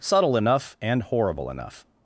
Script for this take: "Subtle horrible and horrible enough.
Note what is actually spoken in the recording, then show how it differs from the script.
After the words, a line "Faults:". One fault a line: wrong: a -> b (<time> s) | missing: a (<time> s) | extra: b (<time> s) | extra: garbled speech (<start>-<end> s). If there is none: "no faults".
"Subtle enough and horrible enough.
Faults:
wrong: horrible -> enough (0.3 s)